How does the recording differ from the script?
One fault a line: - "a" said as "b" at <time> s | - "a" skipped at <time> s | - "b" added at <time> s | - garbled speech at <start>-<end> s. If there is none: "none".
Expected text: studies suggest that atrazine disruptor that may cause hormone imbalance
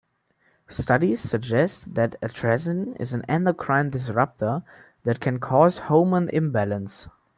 - "is an endocrine" added at 3.0 s
- "may" said as "can" at 5.2 s